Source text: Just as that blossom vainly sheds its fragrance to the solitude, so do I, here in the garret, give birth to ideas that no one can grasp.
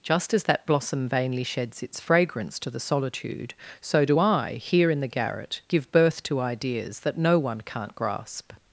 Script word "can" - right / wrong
wrong